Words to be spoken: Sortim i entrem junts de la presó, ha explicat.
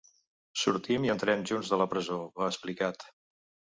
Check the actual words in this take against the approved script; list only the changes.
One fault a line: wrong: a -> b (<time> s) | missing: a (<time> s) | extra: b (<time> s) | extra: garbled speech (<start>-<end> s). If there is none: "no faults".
no faults